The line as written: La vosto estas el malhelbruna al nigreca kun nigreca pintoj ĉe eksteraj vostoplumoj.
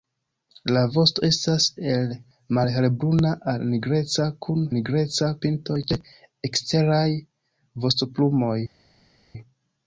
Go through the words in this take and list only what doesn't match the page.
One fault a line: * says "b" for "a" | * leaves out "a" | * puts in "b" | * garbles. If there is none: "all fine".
all fine